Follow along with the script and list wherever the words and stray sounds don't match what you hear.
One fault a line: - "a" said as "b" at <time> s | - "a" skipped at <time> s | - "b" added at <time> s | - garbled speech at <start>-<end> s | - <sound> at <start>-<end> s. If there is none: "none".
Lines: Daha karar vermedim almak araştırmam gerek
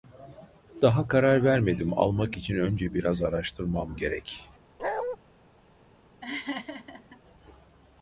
- "için önce biraz" added at 2.4 s
- bark at 4.8-5.2 s
- laugh at 6.2-7.2 s